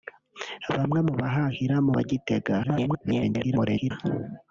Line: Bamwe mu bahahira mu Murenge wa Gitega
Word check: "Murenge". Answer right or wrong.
wrong